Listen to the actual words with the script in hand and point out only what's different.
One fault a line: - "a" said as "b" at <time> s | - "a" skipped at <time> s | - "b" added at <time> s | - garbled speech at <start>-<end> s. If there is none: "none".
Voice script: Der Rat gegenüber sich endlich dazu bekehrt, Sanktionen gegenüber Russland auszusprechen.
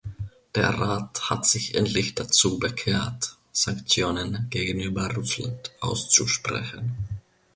- "gegenüber" said as "hat" at 1.3 s